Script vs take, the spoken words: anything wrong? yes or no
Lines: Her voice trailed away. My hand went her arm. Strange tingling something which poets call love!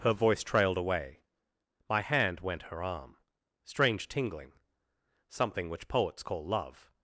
no